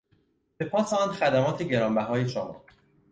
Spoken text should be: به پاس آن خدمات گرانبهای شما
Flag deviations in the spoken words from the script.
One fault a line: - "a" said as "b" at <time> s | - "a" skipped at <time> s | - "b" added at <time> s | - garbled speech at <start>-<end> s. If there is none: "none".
none